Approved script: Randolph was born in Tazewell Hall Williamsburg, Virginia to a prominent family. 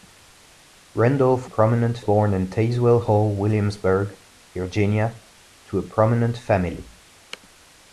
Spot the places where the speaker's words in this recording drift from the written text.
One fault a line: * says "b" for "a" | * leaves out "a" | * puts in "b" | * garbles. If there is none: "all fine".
* says "prominent" for "was"